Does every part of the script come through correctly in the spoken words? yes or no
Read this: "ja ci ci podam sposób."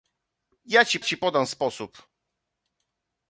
yes